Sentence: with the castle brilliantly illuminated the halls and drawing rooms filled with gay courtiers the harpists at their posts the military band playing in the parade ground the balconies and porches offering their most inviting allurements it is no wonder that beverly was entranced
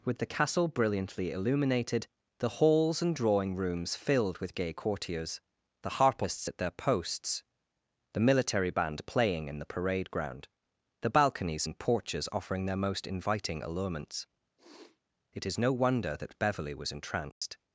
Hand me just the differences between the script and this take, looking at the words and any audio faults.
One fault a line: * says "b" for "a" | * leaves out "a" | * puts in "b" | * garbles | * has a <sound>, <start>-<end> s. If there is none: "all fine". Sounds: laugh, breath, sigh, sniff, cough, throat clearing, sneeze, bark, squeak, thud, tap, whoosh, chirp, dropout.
* has a sniff, 14.6-15.0 s
* has a dropout, 17.3-17.4 s